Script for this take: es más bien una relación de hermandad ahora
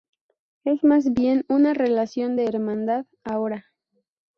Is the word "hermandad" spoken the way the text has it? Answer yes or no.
yes